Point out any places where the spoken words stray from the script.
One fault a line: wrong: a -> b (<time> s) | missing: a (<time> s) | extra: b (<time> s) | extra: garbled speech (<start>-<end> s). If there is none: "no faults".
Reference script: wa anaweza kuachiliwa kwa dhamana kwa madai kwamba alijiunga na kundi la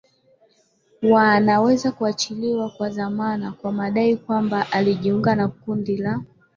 no faults